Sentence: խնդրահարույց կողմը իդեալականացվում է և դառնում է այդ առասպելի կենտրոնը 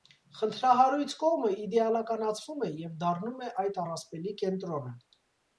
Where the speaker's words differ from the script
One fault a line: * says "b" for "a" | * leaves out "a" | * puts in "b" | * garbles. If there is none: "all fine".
all fine